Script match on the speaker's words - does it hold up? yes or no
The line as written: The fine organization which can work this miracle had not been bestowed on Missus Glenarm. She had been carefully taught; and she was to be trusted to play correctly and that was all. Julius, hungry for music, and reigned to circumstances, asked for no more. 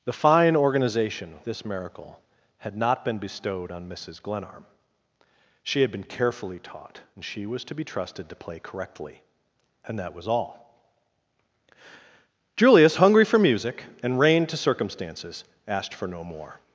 no